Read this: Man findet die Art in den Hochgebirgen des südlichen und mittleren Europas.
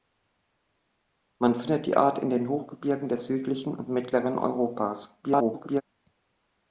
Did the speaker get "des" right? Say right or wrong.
right